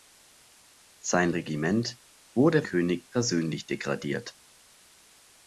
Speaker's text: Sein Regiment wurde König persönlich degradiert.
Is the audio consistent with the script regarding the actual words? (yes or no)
yes